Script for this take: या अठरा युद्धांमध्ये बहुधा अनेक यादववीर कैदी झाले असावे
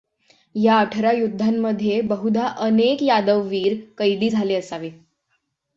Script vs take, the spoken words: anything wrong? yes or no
no